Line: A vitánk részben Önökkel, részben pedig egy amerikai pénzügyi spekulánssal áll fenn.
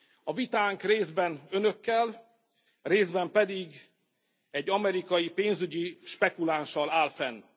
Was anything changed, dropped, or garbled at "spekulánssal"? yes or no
no